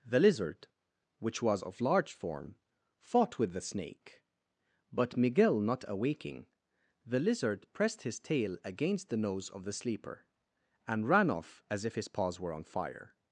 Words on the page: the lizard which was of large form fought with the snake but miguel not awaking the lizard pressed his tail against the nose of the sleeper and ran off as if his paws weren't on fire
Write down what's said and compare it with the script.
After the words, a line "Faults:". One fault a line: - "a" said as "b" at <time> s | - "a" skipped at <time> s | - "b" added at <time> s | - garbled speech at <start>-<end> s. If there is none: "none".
the lizard which was of large form fought with the snake but miguel not awaking the lizard pressed his tail against the nose of the sleeper and ran off as if his paws were on fire
Faults:
- "weren't" said as "were" at 12.4 s